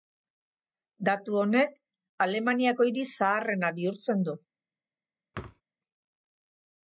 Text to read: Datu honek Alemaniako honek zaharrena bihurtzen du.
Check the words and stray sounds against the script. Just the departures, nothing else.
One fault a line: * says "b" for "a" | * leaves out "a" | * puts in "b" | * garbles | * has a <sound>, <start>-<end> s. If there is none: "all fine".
* says "hiri" for "honek"
* has a thud, 5.3-5.6 s